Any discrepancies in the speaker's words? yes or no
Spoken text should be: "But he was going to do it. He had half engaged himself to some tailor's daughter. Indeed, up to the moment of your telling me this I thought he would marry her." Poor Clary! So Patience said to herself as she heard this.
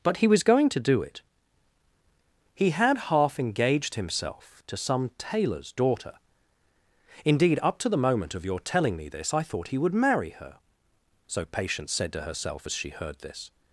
yes